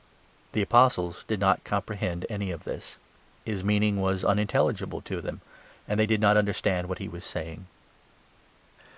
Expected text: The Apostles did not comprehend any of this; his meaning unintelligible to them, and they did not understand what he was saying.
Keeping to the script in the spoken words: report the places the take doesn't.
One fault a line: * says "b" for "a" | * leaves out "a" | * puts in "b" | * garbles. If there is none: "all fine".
* puts in "was"